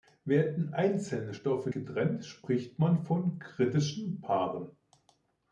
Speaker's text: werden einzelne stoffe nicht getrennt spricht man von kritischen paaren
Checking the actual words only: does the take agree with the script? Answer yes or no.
no